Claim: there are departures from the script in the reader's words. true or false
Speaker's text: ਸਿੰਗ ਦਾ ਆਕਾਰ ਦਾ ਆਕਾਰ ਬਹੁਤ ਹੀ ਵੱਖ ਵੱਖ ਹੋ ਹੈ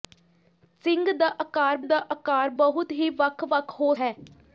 false